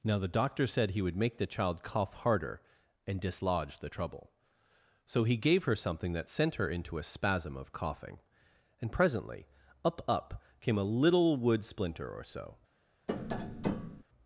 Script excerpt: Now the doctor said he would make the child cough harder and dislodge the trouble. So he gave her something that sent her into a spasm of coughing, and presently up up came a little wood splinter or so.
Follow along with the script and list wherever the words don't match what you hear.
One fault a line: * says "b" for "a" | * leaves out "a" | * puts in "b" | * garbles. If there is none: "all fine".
all fine